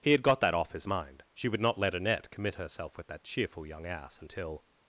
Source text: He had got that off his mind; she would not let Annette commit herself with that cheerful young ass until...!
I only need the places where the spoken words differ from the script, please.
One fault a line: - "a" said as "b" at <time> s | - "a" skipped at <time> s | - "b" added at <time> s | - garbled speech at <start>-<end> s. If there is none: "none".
none